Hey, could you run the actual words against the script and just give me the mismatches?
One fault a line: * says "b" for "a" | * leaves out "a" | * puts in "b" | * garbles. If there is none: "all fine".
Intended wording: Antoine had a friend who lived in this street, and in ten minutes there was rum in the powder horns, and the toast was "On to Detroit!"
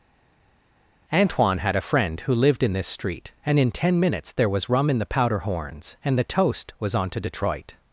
all fine